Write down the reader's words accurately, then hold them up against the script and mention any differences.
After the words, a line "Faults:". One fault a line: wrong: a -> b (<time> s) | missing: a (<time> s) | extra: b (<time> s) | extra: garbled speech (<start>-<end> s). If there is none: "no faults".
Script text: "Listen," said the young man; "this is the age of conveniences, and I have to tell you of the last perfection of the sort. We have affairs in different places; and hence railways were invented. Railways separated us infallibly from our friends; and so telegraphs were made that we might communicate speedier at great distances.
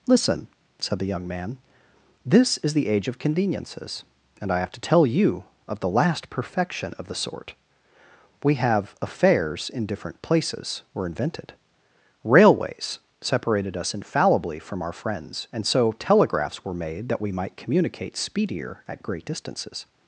"Listen," said the young man; "this is the age of conveniences, and I have to tell you of the last perfection of the sort. We have affairs in different places; were invented. Railways separated us infallibly from our friends; and so telegraphs were made that we might communicate speedier at great distances.
Faults:
missing: and hence railways (10.8 s)